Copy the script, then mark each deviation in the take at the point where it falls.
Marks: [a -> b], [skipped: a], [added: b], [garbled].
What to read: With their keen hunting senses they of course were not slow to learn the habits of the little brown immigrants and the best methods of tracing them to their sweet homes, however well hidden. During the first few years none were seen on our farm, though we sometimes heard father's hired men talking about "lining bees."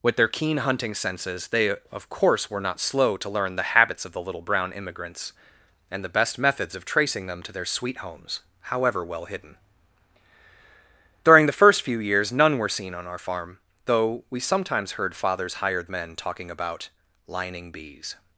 With their keen hunting senses they of course were not slow to learn the habits of the little brown immigrants and the best methods of tracing them to their sweet homes, however well hidden. During the first few years none were seen on our farm, though we sometimes heard father's hired men talking about "lining bees."